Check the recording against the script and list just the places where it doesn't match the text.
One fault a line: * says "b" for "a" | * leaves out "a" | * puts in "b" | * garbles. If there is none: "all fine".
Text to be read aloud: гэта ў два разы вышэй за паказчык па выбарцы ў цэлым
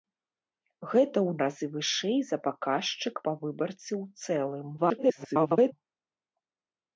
* leaves out "два"
* garbles